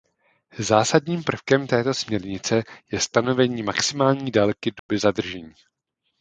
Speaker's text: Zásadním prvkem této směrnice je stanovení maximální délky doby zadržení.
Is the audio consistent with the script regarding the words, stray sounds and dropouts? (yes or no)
no